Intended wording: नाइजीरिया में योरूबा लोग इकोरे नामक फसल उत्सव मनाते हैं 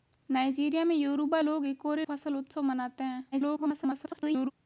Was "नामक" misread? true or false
true